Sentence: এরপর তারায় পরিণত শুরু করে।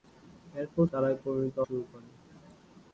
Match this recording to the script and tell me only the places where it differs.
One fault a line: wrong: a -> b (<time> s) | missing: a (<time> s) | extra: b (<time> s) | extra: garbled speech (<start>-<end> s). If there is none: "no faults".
no faults